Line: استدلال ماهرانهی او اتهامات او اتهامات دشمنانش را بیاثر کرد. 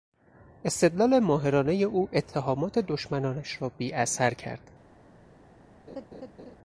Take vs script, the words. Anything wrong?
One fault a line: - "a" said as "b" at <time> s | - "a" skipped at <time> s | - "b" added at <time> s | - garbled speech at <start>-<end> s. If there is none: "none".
- "او اتهامات" skipped at 2.8 s